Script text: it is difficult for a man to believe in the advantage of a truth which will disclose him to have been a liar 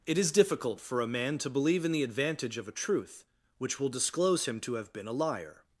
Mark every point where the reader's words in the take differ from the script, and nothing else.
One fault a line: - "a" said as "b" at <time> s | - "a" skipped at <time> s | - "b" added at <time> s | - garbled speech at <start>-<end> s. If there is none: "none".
none